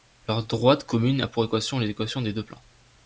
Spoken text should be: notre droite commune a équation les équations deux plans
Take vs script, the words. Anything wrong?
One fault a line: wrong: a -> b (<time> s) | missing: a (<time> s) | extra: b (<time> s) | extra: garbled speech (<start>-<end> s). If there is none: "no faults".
wrong: notre -> leur (0.3 s)
extra: pour (1.3 s)
extra: des (2.2 s)